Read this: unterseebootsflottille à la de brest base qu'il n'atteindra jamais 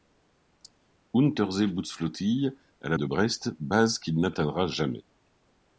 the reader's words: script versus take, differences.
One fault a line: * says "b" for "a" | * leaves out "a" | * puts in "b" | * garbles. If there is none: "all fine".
all fine